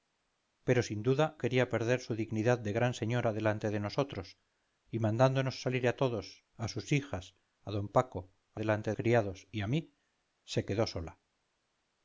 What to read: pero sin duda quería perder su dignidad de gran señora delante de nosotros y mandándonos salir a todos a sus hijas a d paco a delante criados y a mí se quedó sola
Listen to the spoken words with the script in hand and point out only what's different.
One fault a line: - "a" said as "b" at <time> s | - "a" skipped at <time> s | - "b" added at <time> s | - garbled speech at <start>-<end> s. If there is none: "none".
none